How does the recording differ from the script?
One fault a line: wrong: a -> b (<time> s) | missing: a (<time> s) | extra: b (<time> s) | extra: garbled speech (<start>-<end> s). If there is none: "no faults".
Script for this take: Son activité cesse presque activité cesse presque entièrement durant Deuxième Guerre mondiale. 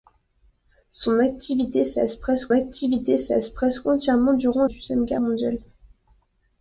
no faults